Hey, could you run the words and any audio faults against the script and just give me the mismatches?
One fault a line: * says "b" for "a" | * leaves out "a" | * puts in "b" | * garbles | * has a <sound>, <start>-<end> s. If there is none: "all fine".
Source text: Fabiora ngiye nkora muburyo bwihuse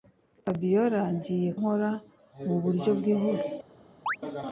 * has a chirp, 4.1-4.2 s